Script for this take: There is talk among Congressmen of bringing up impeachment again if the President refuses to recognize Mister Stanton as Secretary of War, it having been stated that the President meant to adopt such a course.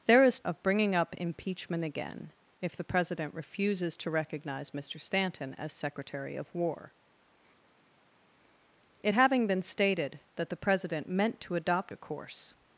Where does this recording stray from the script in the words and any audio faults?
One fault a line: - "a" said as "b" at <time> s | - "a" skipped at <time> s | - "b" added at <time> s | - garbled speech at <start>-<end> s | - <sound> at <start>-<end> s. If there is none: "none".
- "talk among Congressmen" skipped at 0.4 s
- "such" skipped at 11.9 s